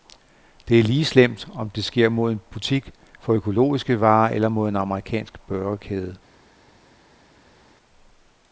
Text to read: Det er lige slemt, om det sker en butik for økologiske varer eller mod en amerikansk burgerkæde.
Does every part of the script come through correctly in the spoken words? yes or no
no